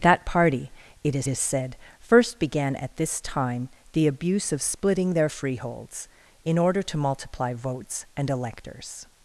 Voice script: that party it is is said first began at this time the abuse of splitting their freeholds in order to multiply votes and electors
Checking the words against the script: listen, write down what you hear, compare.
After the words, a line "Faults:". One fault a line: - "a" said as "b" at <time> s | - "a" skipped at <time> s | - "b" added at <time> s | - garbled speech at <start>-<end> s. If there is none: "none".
that party it is is said first began at this time the abuse of splitting their freeholds in order to multiply votes and electors
Faults:
none